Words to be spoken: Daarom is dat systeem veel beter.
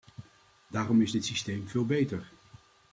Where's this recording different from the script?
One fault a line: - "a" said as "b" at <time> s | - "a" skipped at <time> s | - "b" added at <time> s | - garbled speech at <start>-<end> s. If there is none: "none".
- "dat" said as "dit" at 1.1 s